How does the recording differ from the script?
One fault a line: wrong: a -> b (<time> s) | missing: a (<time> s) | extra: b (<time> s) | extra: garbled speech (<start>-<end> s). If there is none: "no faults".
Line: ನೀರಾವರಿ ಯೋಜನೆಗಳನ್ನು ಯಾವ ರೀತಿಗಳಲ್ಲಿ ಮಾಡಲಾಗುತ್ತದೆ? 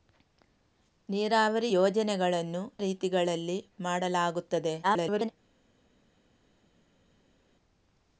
missing: ಯಾವ (2.6 s)
extra: garbled speech (4.8-5.3 s)